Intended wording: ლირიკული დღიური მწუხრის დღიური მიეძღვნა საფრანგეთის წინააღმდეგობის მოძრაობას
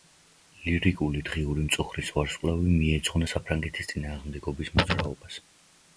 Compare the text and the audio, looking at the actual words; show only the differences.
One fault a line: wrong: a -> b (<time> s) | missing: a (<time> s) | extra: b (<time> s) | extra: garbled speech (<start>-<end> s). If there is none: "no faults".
wrong: დღიური -> ვარსკვლავი (2.1 s)